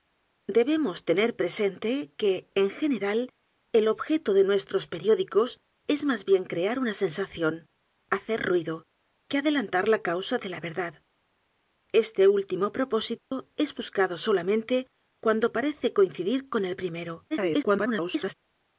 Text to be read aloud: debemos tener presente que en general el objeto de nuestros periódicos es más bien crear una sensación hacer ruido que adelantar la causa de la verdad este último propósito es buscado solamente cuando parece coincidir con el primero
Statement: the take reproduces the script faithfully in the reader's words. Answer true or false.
false